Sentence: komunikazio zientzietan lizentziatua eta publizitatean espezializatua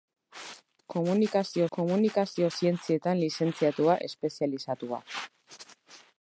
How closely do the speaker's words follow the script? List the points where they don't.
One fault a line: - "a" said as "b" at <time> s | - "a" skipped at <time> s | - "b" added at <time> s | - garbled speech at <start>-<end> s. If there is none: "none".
- "komunikazio" added at 1.8 s
- "eta publizitatean" skipped at 4.0 s